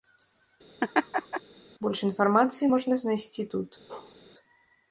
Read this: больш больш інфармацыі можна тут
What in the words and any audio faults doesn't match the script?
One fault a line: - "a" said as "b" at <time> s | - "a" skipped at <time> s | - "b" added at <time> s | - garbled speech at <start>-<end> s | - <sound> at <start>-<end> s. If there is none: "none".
- laugh at 0.8-1.4 s
- "больш" skipped at 2.0 s
- "знайсці" added at 3.0 s
- bark at 3.9-4.2 s